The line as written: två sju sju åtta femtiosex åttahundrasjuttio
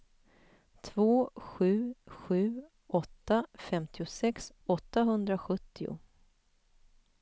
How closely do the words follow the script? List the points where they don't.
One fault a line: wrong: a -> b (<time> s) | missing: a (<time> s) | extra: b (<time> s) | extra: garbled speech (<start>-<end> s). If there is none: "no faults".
no faults